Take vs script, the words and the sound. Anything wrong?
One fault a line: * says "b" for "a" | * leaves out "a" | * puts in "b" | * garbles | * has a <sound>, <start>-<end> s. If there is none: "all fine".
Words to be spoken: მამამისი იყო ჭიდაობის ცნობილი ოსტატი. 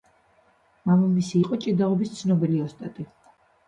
all fine